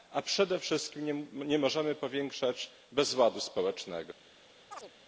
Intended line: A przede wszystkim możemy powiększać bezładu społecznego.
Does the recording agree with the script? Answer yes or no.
no